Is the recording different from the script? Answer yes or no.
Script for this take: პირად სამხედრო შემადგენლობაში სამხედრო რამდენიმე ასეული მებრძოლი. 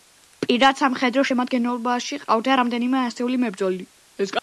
yes